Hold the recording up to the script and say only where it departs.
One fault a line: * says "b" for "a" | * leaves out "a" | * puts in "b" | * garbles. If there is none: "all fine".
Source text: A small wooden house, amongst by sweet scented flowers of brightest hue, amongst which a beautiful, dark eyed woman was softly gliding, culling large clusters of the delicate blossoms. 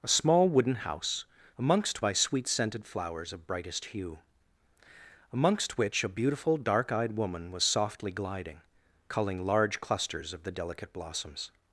all fine